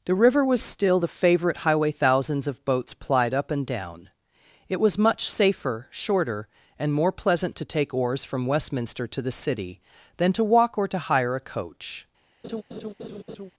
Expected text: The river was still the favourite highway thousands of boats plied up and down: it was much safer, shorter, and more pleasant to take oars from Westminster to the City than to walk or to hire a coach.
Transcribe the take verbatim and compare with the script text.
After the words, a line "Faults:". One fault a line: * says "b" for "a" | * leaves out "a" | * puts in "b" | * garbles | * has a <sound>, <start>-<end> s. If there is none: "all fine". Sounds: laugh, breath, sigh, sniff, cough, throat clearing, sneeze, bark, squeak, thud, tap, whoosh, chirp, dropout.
The river was still the favourite highway thousands of boats plied up and down: it was much safer, shorter, and more pleasant to take oars from Westminster to the City than to walk or to hire a coach.
Faults:
* has a laugh, 12.4-13.5 s